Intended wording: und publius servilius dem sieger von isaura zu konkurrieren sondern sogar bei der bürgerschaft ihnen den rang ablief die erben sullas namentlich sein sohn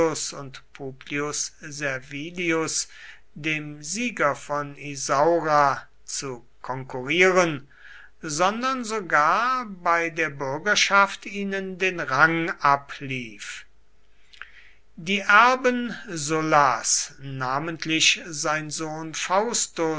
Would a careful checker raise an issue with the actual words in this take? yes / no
no